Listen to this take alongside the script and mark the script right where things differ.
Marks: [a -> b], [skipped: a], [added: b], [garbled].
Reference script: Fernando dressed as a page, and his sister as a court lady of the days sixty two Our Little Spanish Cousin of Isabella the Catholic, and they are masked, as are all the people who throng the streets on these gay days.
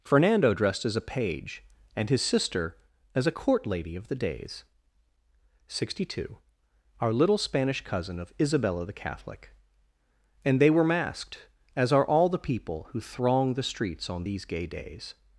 Fernando dressed as a page, and his sister as a court lady of the days sixty two Our Little Spanish Cousin of Isabella the Catholic, and they [are -> were] masked, as are all the people who throng the streets on these gay days.